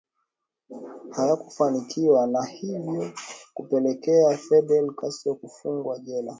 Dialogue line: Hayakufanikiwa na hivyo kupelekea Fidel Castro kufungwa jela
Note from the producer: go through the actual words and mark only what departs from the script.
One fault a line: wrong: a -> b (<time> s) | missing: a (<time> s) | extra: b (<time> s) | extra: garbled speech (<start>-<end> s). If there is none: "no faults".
no faults